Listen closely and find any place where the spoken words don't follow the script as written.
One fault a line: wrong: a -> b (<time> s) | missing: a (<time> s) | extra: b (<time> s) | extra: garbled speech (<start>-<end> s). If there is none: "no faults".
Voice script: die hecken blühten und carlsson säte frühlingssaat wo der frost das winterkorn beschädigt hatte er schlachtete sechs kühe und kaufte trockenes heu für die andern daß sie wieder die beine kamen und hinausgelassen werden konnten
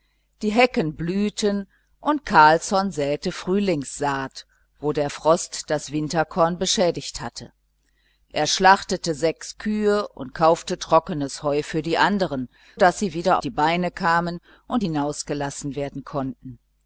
no faults